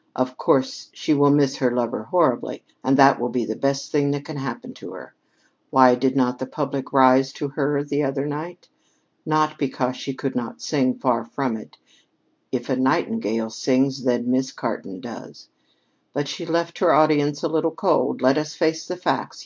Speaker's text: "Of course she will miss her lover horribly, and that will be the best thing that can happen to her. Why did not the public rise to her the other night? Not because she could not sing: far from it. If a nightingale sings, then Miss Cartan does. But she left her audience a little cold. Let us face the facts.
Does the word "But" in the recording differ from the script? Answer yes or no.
no